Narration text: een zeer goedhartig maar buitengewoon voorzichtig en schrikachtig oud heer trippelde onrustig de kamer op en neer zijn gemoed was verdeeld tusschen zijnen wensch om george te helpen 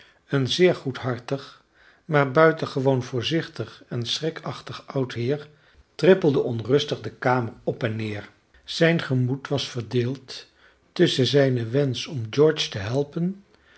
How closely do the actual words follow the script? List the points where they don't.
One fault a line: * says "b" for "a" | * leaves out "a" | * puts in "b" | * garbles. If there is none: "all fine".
all fine